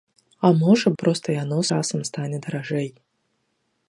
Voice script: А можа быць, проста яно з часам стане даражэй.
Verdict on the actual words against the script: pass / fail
fail